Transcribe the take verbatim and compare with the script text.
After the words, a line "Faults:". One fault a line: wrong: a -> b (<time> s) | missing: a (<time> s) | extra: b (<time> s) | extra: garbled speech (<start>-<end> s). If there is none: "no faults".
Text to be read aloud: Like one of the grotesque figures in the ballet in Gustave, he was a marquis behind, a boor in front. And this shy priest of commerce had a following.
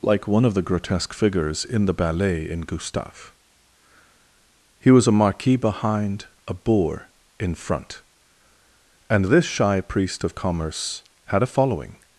Like one of the grotesque figures in the ballet in Gustave, he was a marquis behind, a boor in front. And this shy priest of commerce had a following.
Faults:
no faults